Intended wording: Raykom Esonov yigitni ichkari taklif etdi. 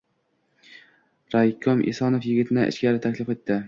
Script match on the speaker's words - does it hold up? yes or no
yes